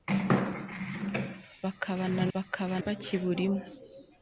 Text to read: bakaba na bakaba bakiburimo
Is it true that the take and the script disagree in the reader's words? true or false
false